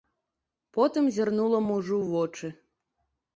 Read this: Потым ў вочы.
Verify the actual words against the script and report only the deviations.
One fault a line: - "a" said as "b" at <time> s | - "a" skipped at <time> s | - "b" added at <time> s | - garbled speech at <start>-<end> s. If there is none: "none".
- "зірнула мужу" added at 1.2 s